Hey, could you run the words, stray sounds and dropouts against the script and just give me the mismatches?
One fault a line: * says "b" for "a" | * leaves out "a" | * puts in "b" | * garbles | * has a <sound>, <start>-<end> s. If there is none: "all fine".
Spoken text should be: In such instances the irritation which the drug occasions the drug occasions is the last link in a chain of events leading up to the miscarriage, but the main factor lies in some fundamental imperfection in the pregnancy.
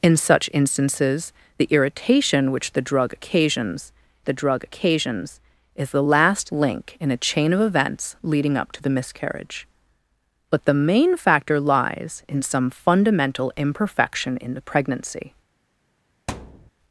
* has a thud, 16.3-16.7 s